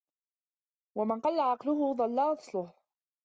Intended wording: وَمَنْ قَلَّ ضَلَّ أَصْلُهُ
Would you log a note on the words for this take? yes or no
yes